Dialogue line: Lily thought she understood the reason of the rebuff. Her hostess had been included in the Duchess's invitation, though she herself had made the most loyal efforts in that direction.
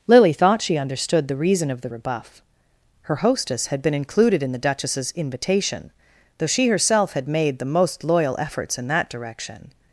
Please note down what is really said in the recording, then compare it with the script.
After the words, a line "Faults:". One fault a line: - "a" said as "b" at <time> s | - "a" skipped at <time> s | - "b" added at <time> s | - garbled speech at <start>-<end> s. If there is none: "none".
Lily thought she understood the reason of the rebuff. Her hostess had been included in the Duchess's invitation, though she herself had made the most loyal efforts in that direction.
Faults:
none